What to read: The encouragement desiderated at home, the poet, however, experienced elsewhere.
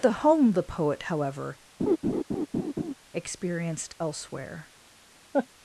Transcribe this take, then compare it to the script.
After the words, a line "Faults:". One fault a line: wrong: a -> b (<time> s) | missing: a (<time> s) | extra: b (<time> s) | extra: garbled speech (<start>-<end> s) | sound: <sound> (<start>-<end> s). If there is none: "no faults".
The home, the poet, however, experienced elsewhere.
Faults:
missing: encouragement desiderated at (0.2 s)
sound: laugh (1.8-2.9 s)
sound: laugh (5.3-5.5 s)